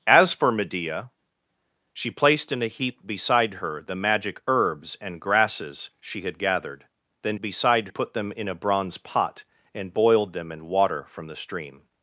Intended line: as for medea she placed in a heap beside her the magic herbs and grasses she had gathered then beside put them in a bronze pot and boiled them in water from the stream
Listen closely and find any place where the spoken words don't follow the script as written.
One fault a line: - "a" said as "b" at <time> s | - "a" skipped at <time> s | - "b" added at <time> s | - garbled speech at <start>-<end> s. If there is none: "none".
none